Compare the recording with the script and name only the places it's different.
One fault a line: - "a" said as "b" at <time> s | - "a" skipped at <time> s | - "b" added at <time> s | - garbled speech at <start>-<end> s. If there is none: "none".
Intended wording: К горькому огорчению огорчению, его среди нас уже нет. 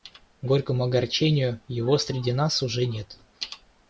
- "огорчению" skipped at 1.6 s